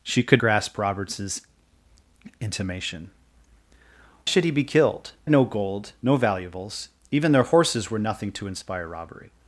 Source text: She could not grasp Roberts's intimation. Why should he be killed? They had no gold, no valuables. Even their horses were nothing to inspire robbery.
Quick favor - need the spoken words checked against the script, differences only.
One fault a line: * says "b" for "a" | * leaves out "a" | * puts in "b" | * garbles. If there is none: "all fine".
* leaves out "not"
* leaves out "Why"
* leaves out "They had"